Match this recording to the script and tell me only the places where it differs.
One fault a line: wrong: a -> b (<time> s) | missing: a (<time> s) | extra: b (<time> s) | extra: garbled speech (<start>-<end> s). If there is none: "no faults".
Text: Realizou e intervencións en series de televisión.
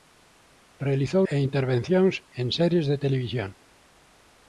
no faults